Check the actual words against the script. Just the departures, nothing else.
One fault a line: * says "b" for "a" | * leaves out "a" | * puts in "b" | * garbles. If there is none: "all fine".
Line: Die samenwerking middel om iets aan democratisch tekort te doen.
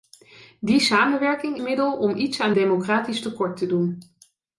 all fine